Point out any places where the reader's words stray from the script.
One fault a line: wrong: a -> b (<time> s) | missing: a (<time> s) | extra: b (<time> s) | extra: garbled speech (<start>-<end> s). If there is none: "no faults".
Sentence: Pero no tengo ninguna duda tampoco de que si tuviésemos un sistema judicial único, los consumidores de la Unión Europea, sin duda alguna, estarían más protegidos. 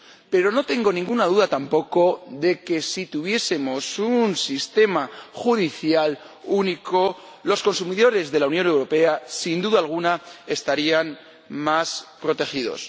no faults